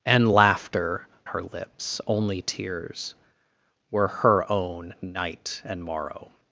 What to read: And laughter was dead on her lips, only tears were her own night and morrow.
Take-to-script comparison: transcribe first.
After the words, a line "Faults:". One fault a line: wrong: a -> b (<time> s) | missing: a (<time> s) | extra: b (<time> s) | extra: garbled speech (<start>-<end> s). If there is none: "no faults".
And laughter her lips, only tears were her own night and morrow.
Faults:
missing: was dead on (1.1 s)